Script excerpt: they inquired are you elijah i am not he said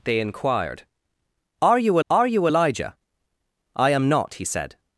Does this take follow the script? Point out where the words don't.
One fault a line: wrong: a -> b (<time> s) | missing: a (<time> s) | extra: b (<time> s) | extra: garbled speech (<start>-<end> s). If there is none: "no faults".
extra: are you (2.1 s)